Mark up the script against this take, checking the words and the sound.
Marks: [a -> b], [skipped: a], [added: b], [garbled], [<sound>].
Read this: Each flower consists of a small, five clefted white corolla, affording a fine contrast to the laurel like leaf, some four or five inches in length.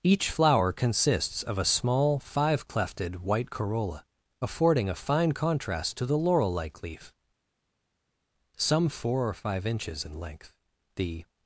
Each flower consists of a small, five clefted white corolla, affording a fine contrast to the laurel like leaf, some four or five inches in length. [added: The]